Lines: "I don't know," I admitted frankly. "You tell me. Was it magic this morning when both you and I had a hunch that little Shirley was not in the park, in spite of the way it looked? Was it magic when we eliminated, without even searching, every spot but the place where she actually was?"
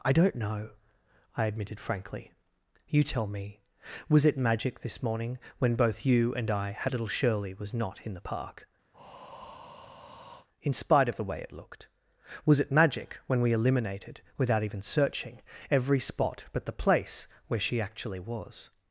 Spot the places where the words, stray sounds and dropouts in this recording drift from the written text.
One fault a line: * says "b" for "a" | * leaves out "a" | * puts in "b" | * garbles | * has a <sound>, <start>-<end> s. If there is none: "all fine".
* leaves out "a hunch that"
* has a breath, 8.9-10.5 s